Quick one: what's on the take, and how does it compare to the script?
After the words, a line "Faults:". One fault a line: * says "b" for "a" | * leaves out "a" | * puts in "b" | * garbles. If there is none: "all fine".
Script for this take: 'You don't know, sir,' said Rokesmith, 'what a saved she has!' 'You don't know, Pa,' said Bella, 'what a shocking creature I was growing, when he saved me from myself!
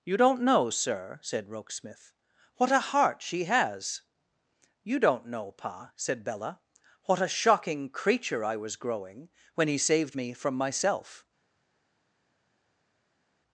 'You don't know, sir,' said Rokesmith, 'what a heart she has!' 'You don't know, Pa,' said Bella, 'what a shocking creature I was growing, when he saved me from myself!
Faults:
* says "heart" for "saved"